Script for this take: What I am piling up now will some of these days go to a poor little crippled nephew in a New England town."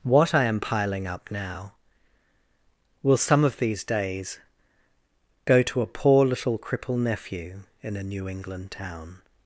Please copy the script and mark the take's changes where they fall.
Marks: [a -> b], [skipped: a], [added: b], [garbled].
What I am piling up now will some of these days go to a poor little [crippled -> cripple] nephew in a New England town."